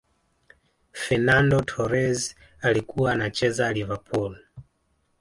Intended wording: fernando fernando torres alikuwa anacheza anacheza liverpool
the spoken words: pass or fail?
fail